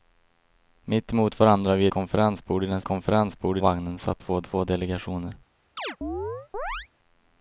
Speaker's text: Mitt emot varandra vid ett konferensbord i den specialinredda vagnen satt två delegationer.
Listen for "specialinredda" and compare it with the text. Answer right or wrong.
wrong